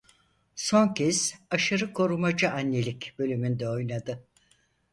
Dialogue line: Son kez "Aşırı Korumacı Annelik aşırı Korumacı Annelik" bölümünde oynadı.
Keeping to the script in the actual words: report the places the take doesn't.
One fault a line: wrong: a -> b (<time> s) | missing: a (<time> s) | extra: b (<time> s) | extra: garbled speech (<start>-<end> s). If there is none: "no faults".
missing: aşırı Korumacı Annelik (3.2 s)